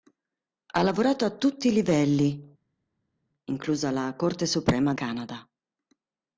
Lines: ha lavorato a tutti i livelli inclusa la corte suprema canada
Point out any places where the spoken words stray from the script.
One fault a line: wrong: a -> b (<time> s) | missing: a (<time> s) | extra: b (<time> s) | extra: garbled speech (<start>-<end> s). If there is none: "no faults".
no faults